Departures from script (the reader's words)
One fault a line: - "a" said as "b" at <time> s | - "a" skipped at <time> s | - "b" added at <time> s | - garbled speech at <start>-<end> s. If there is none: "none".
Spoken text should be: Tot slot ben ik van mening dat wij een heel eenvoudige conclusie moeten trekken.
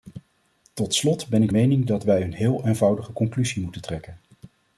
- "van" skipped at 1.5 s